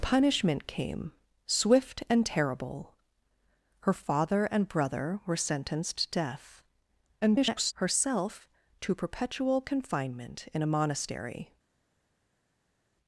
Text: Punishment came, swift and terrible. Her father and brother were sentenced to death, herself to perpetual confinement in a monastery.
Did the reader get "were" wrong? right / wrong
right